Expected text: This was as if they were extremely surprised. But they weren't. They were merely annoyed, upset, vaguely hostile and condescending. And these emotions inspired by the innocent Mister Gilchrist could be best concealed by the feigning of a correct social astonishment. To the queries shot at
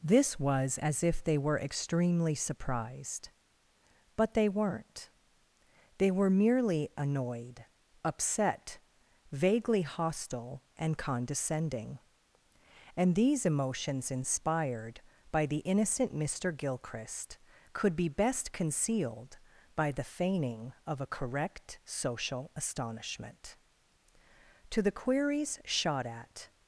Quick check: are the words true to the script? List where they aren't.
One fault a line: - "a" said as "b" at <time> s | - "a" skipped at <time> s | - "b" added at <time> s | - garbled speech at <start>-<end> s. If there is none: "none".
none